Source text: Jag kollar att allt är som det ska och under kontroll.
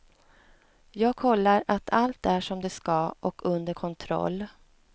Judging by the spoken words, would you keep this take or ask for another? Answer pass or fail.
pass